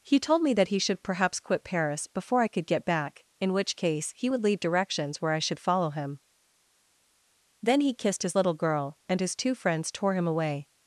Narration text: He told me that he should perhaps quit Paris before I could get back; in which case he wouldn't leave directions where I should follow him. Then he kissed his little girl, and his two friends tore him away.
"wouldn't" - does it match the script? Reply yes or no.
no